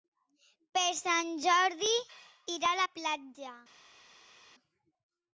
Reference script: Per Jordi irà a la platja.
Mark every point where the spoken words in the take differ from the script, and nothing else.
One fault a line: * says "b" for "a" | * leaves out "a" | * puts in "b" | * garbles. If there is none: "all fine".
* puts in "Sant"